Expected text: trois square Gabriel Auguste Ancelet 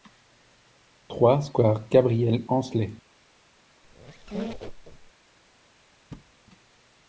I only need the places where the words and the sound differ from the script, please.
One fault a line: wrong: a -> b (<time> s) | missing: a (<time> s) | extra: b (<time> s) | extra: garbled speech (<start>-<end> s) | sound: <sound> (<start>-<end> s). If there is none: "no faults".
missing: Auguste (2.4 s)
sound: squeak (3.8-5.1 s)
sound: thud (6.1-6.3 s)